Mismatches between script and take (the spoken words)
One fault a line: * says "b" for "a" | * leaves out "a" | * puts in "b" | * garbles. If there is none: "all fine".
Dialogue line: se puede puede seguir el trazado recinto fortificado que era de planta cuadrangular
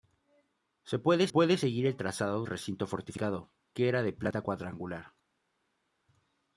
all fine